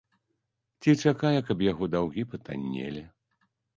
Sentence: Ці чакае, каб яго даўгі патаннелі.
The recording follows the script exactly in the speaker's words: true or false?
true